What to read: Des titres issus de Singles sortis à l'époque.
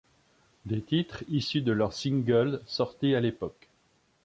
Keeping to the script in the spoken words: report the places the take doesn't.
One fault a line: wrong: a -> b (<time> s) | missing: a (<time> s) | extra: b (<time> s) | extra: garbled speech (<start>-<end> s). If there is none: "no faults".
extra: leurs (1.7 s)